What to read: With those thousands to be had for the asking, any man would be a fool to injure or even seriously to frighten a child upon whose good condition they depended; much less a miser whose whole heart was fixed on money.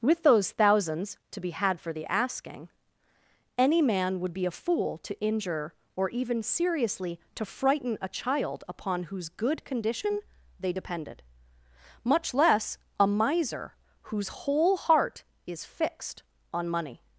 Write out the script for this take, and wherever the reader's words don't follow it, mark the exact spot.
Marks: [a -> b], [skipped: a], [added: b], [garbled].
With those thousands to be had for the asking, any man would be a fool to injure or even seriously to frighten a child upon whose good condition they depended; much less a miser whose whole heart [was -> is] fixed on money.